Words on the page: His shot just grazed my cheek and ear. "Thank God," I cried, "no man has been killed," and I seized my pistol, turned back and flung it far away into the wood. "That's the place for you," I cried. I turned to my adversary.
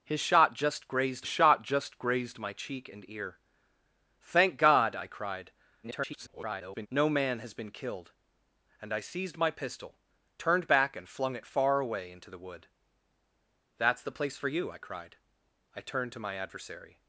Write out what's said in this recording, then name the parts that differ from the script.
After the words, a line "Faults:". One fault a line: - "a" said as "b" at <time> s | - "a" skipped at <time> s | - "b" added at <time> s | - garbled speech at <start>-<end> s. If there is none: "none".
His shot just grazed shot just grazed my cheek and ear. "Thank God," I cried, [garbled] "no man has been killed," and I seized my pistol, turned back and flung it far away into the wood. "That's the place for you," I cried. I turned to my adversary.
Faults:
- "shot just grazed" added at 1.3 s
- garbled speech at 5.8-6.9 s